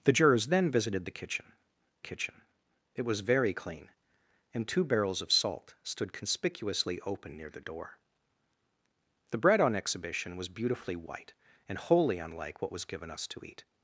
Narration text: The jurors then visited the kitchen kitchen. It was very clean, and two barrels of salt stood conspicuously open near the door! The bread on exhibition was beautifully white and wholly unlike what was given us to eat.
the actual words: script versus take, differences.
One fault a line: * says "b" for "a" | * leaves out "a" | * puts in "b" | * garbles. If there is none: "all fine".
all fine